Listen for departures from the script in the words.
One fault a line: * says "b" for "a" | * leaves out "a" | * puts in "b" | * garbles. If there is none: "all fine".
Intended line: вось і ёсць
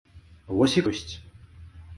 all fine